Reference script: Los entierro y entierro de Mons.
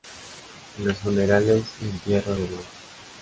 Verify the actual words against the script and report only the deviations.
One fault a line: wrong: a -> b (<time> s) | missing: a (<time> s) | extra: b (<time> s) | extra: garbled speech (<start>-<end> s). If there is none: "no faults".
wrong: entierro -> funerales (1.0 s)